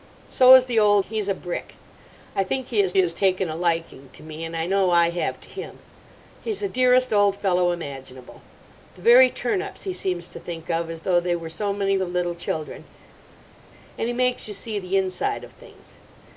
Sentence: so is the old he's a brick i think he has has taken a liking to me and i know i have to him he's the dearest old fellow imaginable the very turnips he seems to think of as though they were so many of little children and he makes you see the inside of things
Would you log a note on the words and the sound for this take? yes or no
no